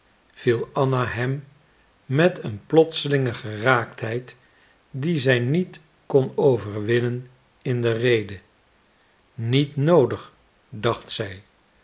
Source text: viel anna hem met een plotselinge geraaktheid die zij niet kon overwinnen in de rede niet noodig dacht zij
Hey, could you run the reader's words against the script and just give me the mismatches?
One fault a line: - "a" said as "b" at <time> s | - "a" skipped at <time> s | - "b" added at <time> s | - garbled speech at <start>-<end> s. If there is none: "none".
none